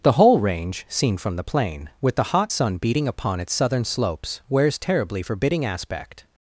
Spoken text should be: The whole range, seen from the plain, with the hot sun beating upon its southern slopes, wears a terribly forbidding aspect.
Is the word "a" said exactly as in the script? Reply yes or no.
no